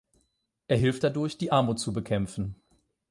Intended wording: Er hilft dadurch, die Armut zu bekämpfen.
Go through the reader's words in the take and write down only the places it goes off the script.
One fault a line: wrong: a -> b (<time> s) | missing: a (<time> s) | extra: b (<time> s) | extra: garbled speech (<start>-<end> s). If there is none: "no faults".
no faults